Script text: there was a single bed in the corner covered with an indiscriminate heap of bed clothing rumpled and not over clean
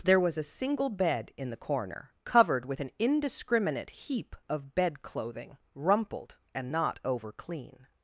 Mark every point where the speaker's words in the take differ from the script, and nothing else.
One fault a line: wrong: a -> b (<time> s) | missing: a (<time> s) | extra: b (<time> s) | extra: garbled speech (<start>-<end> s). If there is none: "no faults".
no faults